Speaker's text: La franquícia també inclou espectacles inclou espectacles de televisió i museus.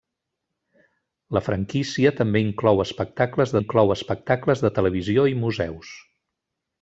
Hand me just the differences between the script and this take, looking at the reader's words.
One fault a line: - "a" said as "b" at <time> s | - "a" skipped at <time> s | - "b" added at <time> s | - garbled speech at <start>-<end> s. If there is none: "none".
none